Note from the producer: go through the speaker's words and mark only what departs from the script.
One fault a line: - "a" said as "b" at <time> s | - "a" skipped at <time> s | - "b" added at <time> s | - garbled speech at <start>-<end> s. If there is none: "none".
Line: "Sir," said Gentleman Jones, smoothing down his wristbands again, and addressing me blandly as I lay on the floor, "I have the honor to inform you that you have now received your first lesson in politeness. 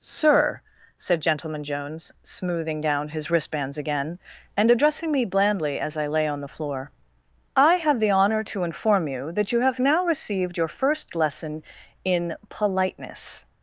none